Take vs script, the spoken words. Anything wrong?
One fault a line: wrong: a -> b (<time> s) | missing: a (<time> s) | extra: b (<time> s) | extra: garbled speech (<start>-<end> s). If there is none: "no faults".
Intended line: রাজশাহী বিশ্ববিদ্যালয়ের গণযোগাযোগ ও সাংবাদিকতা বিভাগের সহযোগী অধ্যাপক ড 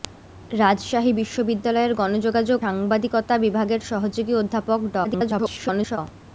missing: ও (2.6 s)
extra: garbled speech (5.0-6.0 s)